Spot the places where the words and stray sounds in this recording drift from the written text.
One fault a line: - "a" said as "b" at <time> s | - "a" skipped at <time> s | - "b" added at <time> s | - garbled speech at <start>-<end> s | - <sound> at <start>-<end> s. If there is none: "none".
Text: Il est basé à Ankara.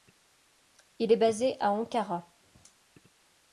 none